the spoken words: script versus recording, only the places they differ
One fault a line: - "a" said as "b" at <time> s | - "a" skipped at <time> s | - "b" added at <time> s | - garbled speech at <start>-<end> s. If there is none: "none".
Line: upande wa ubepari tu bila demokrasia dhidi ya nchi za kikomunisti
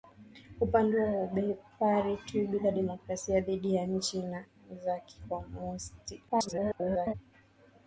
- garbled speech at 6.3-7.1 s